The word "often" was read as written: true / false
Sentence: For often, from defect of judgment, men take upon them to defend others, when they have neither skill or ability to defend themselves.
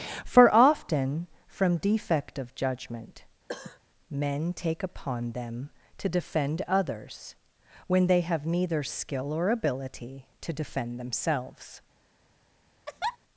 true